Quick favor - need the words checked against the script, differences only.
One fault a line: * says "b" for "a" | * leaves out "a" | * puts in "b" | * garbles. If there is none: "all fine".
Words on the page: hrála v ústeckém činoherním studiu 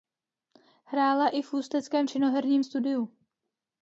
* puts in "i"